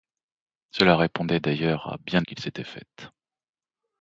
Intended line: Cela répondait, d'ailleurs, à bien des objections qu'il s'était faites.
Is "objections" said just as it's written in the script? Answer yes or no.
no